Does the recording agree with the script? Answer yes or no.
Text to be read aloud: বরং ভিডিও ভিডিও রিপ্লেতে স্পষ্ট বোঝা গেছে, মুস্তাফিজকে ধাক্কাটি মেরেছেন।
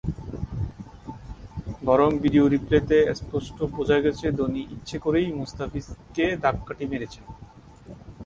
no